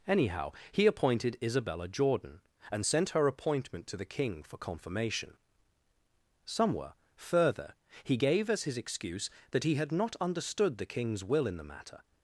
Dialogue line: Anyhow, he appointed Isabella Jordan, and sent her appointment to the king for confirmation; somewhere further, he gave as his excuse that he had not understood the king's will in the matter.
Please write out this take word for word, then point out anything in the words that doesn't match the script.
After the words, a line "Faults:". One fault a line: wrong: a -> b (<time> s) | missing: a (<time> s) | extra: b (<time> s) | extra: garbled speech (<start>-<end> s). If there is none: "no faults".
Anyhow, he appointed Isabella Jordan, and sent her appointment to the king for confirmation; somewhere further, he gave as his excuse that he had not understood the king's will in the matter.
Faults:
no faults